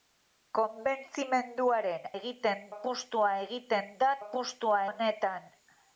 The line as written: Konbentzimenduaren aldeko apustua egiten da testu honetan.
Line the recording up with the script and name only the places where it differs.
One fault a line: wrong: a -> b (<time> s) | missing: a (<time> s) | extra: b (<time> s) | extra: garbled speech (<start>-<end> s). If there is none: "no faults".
wrong: aldeko -> egiten (2.2 s)
wrong: testu -> apustua (4.2 s)